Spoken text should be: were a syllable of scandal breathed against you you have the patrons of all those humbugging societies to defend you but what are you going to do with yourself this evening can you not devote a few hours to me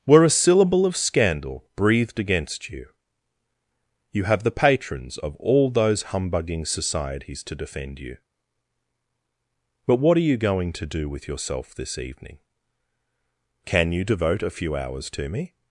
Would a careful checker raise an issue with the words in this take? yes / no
yes